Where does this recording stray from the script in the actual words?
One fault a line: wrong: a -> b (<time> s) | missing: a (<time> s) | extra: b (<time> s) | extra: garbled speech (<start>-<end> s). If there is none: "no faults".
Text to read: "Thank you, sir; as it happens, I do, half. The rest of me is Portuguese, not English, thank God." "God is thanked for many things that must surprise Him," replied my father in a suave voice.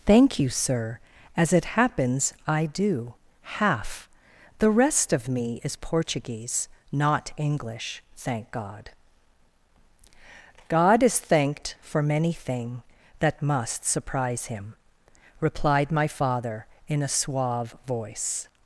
wrong: things -> thing (12.3 s)